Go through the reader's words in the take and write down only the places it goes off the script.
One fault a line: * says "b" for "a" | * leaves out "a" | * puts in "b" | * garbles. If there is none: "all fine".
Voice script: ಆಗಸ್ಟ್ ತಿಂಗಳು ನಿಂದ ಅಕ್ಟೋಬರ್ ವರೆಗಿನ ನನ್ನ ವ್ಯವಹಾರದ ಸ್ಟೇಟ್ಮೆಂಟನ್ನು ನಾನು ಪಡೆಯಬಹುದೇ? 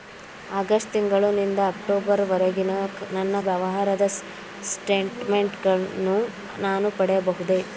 all fine